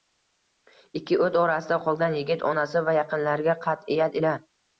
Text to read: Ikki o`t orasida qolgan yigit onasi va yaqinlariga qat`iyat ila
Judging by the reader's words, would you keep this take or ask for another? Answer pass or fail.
pass